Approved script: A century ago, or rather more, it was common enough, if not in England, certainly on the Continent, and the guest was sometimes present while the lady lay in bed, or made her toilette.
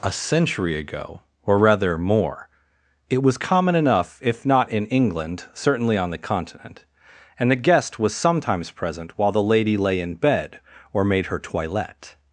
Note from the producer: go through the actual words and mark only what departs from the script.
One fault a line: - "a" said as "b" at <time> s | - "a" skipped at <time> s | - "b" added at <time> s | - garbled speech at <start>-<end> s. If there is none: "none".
none